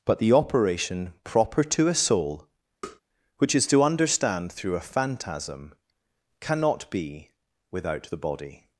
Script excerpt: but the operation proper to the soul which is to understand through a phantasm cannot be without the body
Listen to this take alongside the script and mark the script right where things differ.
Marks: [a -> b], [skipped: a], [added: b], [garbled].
but the operation proper to [the -> a] soul which is to understand through a phantasm cannot be without the body